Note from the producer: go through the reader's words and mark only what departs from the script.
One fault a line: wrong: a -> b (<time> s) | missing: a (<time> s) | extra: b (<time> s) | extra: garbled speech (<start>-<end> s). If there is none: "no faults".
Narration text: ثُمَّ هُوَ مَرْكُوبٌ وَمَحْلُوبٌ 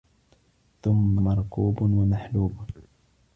missing: هُوَ (1.2 s)